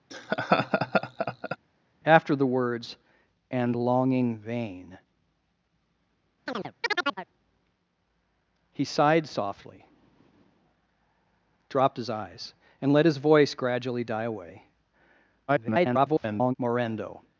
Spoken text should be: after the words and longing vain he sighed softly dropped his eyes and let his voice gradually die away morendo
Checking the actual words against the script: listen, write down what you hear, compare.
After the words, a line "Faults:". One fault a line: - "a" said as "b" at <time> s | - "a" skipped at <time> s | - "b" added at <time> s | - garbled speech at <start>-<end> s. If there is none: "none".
after the words and longing vain he sighed softly dropped his eyes and let his voice gradually die away [garbled] morendo
Faults:
- garbled speech at 15.5-16.5 s